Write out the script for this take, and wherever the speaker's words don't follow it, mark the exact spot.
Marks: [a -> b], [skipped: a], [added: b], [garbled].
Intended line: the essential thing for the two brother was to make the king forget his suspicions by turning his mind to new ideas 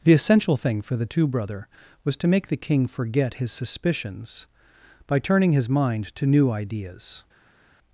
the essential thing for the two brother was to make the king forget his suspicions by turning his mind to new ideas